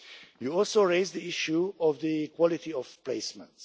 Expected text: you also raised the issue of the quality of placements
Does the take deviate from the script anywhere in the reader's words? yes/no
no